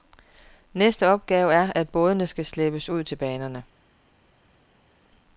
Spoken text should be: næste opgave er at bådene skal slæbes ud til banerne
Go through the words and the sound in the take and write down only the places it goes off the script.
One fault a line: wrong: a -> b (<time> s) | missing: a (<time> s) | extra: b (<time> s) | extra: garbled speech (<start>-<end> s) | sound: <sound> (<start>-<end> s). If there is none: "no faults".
no faults